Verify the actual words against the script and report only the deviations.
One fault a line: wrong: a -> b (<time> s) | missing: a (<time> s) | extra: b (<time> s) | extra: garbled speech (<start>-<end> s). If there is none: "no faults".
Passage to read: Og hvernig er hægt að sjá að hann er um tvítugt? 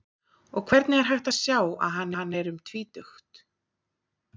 extra: hann (2.2 s)